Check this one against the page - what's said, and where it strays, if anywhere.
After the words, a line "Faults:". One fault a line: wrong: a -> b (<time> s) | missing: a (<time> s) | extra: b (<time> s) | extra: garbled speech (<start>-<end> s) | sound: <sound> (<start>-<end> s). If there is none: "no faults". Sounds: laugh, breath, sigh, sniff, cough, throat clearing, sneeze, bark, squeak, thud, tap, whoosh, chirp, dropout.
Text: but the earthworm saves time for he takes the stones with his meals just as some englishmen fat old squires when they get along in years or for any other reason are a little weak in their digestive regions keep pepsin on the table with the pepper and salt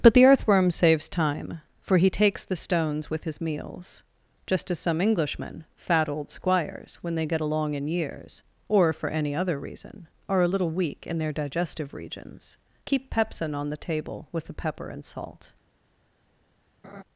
but the earthworm saves time for he takes the stones with his meals just as some englishmen fat old squires when they get along in years or for any other reason are a little weak in their digestive regions keep pepsin on the table with the pepper and salt
Faults:
sound: laugh (16.8-17.0 s)